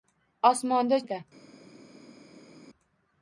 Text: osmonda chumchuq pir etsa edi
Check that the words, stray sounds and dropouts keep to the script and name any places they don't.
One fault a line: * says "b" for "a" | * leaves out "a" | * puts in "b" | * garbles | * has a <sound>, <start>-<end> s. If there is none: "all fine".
* leaves out "chumchuq pir etsa"